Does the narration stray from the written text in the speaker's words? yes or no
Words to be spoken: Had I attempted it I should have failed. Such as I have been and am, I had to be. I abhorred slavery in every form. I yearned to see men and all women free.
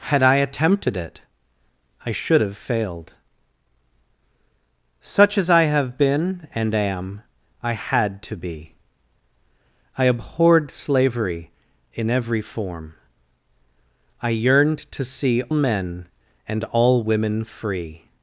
no